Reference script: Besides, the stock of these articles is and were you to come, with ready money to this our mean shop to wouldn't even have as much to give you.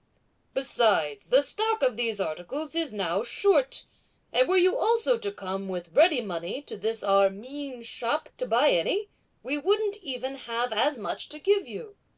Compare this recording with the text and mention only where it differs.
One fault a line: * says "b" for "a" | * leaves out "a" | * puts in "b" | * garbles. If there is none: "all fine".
* puts in "now short"
* puts in "also"
* puts in "buy any we"